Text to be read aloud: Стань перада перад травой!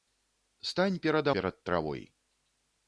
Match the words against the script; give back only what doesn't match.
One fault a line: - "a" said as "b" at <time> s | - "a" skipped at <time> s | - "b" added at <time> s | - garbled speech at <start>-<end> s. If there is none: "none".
none